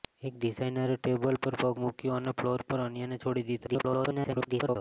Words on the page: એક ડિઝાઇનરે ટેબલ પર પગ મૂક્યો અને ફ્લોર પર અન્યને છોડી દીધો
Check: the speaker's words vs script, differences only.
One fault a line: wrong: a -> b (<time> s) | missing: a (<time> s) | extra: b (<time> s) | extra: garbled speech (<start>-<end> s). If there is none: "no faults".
extra: garbled speech (3.7-4.8 s)